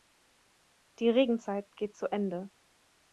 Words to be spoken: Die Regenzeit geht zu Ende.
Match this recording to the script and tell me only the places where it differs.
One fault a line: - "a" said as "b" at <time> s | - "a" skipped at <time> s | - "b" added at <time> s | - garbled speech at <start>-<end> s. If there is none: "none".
none